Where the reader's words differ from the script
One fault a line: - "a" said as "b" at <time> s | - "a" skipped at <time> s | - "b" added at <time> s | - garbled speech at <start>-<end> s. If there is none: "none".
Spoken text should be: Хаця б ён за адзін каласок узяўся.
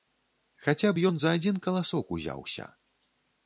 none